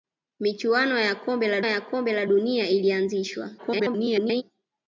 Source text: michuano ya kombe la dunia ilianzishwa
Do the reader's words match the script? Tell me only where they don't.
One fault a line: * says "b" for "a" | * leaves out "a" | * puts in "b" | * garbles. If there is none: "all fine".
* puts in "ya kombe la"
* garbles